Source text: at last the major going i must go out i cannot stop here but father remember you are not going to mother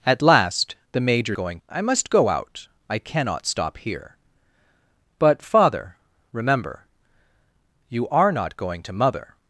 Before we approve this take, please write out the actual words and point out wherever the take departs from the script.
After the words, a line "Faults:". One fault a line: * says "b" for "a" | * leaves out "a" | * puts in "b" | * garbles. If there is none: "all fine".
at last the major going i must go out i cannot stop here but father remember you are not going to mother
Faults:
all fine